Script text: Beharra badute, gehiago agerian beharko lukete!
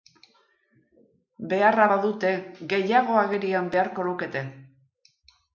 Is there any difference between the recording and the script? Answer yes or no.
no